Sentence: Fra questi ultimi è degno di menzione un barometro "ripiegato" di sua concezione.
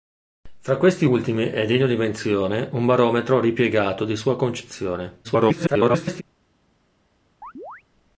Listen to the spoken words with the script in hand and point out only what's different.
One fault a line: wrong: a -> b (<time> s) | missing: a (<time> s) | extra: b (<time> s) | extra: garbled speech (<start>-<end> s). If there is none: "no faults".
extra: garbled speech (5.2-6.2 s)